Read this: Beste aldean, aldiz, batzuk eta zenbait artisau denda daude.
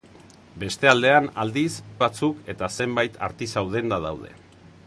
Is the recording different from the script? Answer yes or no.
no